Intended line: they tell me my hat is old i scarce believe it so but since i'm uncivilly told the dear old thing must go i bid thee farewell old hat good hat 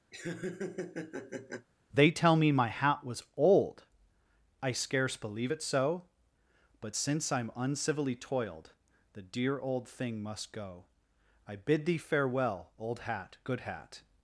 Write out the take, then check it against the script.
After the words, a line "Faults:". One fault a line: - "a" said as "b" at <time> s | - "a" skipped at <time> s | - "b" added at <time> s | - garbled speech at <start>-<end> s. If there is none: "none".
they tell me my hat was old i scarce believe it so but since i'm uncivilly toiled the dear old thing must go i bid thee farewell old hat good hat
Faults:
- "is" said as "was" at 3.0 s
- "told" said as "toiled" at 8.2 s